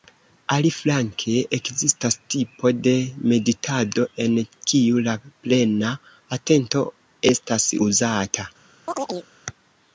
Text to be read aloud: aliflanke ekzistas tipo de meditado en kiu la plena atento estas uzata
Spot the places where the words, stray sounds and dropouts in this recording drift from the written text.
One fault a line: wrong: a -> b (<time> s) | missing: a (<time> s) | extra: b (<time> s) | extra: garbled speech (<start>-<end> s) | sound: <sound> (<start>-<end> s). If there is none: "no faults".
sound: chirp (8.9-9.3 s)